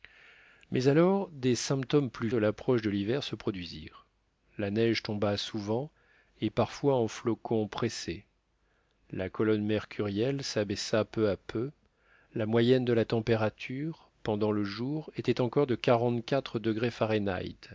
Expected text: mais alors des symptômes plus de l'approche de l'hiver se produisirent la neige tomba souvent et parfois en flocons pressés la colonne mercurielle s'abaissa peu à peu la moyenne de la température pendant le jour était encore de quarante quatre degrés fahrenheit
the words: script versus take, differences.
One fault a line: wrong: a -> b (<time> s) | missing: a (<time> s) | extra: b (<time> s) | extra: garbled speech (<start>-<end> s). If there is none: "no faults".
no faults